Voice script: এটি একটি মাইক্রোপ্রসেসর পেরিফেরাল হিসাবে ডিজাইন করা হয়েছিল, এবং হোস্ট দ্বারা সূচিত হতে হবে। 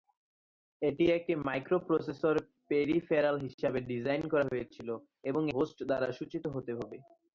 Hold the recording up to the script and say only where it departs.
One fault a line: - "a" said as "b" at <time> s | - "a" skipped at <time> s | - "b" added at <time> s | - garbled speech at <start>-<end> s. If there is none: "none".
none